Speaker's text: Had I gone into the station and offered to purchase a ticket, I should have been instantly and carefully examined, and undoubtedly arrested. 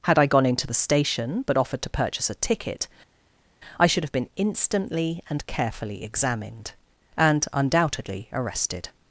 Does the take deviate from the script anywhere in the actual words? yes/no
yes